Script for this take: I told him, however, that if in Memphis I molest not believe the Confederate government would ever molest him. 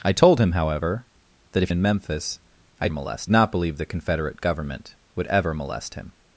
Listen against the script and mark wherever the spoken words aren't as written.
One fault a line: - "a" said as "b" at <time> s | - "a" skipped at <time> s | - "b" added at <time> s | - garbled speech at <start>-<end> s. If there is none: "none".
none